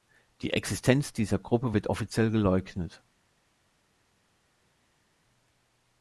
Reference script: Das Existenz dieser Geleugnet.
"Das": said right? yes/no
no